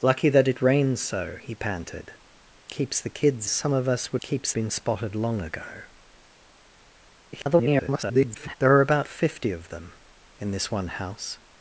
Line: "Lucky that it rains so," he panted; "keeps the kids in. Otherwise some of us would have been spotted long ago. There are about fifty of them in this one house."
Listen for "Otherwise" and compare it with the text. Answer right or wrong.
wrong